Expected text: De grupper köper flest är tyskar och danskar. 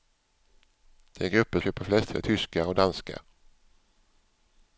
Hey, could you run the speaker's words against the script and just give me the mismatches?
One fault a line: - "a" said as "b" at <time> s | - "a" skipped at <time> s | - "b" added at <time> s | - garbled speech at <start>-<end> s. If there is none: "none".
none